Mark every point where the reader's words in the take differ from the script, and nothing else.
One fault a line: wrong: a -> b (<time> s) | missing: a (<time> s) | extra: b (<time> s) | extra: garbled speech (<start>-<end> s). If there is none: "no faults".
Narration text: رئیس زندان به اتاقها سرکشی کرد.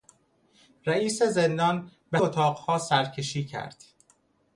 no faults